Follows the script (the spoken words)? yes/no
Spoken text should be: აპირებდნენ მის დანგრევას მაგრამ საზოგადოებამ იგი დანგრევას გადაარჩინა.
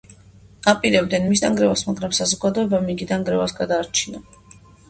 yes